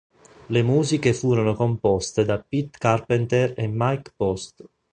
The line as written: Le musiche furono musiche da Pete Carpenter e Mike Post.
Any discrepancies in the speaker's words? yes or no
yes